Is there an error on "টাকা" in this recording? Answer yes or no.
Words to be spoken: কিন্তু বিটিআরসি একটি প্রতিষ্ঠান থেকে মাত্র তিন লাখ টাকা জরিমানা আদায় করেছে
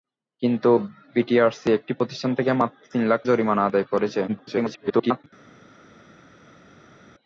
yes